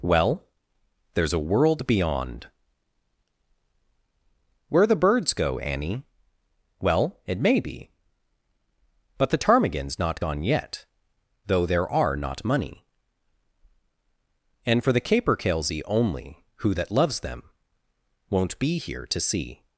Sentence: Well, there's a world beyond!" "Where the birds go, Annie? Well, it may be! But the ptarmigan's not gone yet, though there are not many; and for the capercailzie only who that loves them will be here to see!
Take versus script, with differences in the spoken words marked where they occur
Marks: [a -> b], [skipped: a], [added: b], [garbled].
Well, there's a world beyond!" "Where the birds go, Annie? Well, it may be! But the ptarmigan's not gone yet, though there are not [many; -> money] and for the capercailzie only who that loves them [will -> won't] be here to see!